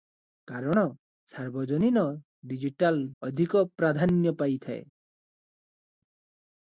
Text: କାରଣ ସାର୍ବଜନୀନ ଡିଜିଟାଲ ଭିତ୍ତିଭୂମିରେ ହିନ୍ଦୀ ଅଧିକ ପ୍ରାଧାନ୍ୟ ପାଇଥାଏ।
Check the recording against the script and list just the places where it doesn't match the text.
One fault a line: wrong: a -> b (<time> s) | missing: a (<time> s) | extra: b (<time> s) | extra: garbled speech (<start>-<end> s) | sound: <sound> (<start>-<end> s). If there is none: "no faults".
missing: ଭିତ୍ତିଭୂମିରେ ହିନ୍ଦୀ (3.0 s)